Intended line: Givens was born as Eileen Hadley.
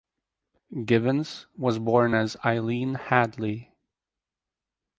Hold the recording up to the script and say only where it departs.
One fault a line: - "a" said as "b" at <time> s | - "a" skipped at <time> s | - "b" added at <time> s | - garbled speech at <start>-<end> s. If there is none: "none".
none